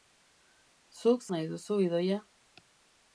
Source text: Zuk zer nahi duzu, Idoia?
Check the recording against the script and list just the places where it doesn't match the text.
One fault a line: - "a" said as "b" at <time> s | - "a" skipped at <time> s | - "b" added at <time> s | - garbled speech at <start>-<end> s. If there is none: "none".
- "zer" skipped at 1.3 s